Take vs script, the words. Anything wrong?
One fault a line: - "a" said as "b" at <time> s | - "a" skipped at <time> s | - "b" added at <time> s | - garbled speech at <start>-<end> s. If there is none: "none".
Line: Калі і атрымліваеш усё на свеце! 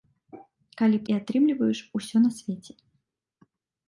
none